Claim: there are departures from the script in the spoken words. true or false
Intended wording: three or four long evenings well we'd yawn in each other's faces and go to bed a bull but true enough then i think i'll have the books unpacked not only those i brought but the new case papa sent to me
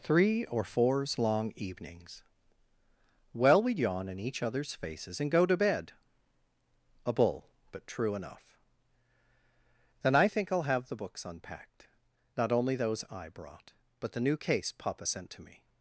true